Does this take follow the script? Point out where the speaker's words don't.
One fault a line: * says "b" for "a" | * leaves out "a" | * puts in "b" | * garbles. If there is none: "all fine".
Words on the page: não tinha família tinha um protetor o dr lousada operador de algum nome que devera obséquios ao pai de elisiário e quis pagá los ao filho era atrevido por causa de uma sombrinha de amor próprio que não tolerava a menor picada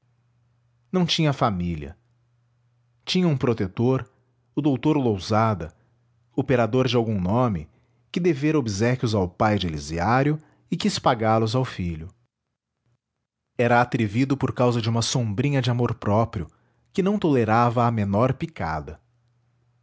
all fine